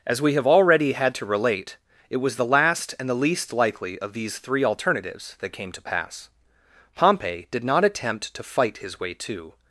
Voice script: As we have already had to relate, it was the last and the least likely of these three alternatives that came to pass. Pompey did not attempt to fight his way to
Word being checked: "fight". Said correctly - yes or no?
yes